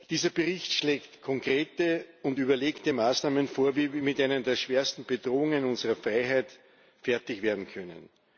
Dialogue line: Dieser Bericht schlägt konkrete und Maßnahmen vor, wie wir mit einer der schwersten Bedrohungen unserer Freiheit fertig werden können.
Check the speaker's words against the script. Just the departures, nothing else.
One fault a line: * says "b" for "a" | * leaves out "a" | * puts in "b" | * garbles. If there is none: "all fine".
* puts in "überlegte"